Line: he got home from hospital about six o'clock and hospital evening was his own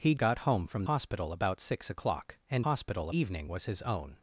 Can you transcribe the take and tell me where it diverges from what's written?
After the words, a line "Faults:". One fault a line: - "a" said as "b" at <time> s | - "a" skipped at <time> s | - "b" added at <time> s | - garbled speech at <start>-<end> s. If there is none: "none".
he got home from hospital about six o'clock and hospital evening was his own
Faults:
none